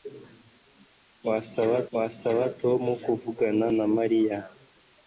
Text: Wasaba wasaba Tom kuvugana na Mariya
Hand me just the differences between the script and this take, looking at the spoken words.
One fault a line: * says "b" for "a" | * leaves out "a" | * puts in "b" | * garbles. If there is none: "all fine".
all fine